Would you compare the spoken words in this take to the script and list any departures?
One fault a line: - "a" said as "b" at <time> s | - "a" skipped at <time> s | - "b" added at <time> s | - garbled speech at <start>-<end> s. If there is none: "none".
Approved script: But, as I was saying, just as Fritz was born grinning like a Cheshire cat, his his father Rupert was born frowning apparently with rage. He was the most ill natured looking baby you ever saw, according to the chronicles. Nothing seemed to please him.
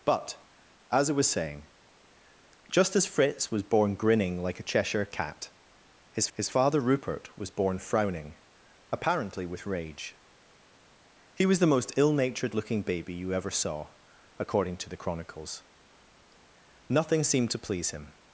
none